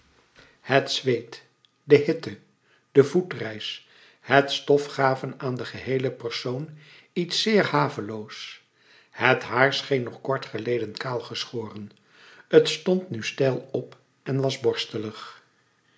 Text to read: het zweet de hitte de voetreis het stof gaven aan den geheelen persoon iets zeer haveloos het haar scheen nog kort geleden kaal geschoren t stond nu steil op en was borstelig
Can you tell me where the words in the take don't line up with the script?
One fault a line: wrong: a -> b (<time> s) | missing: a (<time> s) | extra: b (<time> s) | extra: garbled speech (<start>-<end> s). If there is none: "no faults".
no faults